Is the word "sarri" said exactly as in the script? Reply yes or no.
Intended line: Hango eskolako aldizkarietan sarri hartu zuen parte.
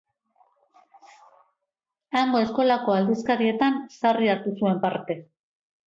yes